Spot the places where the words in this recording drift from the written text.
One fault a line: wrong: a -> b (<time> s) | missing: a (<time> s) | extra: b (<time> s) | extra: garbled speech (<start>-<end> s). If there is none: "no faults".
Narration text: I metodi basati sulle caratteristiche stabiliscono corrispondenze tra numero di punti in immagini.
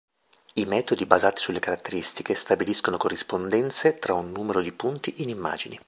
extra: un (4.1 s)